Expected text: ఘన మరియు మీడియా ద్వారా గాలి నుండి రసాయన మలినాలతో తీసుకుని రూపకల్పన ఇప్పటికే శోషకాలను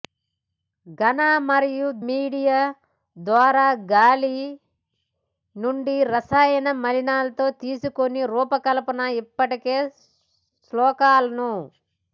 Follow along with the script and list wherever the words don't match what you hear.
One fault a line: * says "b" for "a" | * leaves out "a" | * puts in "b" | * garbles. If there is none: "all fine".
all fine